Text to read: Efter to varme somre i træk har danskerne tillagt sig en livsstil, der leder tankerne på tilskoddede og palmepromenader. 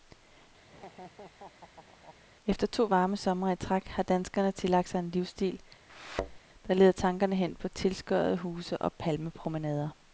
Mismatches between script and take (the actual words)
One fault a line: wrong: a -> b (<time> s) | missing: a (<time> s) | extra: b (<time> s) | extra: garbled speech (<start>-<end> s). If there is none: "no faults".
extra: hen (7.3 s)
extra: huse (8.4 s)